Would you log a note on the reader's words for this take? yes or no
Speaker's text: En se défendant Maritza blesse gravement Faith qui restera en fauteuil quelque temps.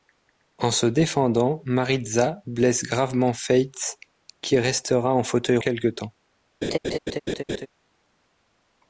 no